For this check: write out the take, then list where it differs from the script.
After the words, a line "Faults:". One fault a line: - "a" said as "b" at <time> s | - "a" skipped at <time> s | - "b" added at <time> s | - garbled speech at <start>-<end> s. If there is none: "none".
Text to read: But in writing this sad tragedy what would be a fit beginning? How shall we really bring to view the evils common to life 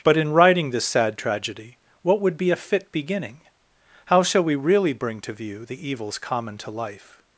But in writing this sad tragedy what would be a fit beginning? How shall we really bring to view the evils common to life
Faults:
none